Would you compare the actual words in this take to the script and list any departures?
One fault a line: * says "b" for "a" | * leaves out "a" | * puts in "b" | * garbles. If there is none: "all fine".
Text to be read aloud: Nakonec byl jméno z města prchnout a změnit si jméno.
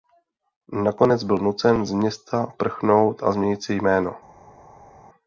* says "nucen" for "jméno"